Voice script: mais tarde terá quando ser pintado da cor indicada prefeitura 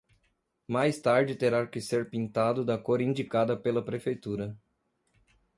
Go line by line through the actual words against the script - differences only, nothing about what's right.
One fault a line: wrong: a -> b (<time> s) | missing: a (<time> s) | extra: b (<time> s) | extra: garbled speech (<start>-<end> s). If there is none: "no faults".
wrong: quando -> que (1.7 s)
extra: pela (3.6 s)